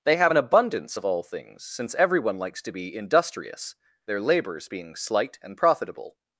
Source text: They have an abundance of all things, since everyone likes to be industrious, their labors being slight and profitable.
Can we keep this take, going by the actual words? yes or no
yes